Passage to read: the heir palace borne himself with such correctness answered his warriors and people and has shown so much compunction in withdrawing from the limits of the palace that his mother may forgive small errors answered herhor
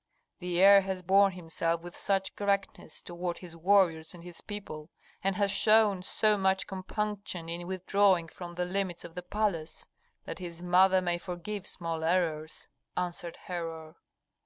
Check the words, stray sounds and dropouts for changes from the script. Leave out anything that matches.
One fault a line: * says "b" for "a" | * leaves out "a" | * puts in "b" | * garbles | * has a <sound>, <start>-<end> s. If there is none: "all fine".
* says "has" for "palace"
* says "toward" for "answered"
* puts in "his"